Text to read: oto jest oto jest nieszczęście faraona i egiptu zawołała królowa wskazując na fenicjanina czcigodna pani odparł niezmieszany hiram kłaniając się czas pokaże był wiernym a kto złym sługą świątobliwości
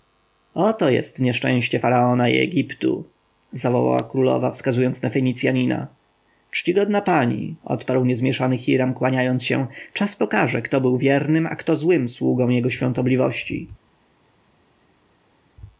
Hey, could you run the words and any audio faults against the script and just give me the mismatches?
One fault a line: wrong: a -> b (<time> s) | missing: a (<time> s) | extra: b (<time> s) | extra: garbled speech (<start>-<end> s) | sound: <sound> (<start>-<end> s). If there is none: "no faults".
missing: oto jest (1.2 s)
extra: kto (10.6 s)
extra: jego (12.5 s)